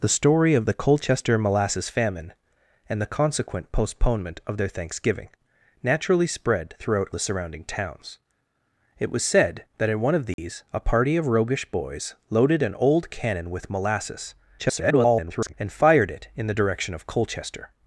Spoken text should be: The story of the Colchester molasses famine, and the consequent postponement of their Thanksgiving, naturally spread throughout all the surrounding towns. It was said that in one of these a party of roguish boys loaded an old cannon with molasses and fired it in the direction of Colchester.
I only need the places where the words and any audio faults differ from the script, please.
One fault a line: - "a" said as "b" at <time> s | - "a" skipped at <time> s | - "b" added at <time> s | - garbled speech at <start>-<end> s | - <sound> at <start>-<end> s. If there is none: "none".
- "all" skipped at 7.1 s
- dropout at 10.3-10.4 s
- garbled speech at 14.6-15.5 s